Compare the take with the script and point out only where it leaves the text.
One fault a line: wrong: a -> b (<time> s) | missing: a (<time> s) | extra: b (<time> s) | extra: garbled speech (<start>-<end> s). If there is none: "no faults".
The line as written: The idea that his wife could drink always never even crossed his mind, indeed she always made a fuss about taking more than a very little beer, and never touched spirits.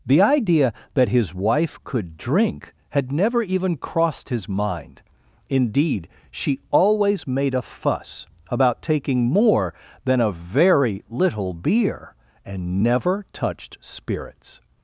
wrong: always -> had (2.9 s)